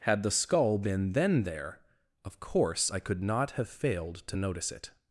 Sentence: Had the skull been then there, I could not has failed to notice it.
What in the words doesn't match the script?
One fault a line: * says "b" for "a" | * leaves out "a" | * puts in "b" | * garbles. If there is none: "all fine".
* puts in "of course"
* says "have" for "has"